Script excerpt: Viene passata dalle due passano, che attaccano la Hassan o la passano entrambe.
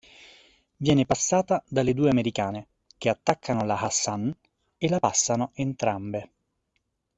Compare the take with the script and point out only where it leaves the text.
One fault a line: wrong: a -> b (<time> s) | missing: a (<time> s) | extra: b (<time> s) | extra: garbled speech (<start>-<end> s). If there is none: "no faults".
wrong: passano -> americane (2.1 s)
wrong: o -> e (4.8 s)